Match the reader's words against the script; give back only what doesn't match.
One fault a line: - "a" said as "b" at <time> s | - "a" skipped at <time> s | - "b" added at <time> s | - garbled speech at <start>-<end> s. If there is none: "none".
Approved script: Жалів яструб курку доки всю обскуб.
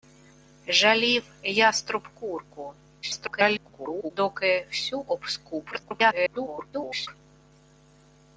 - garbled speech at 3.0-4.1 s
- garbled speech at 5.7-7.1 s